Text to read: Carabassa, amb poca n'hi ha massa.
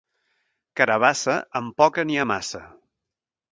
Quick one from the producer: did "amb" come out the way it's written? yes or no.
yes